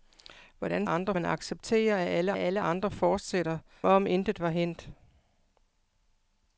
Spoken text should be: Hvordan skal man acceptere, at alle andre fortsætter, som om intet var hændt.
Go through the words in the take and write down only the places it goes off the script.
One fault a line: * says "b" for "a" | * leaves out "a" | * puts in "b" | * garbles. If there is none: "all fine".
* says "andre" for "skal"
* puts in "at alle"
* leaves out "som"